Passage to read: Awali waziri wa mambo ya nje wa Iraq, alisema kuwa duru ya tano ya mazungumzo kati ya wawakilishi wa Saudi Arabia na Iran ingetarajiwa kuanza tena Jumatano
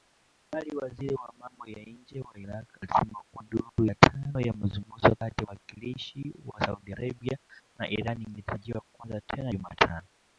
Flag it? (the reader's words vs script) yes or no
no